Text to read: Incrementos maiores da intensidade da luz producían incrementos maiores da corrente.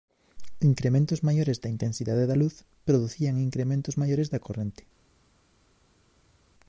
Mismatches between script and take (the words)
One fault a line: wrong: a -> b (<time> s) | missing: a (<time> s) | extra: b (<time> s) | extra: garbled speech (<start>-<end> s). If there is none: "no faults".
no faults